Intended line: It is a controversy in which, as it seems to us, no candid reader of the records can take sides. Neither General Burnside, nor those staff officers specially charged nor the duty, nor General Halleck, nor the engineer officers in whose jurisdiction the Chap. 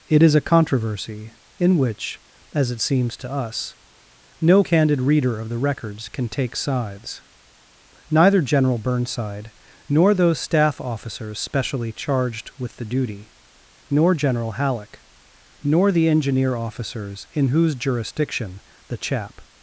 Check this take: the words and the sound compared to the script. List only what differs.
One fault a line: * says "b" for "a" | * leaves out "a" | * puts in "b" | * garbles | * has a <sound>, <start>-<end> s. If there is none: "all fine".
* says "with" for "nor"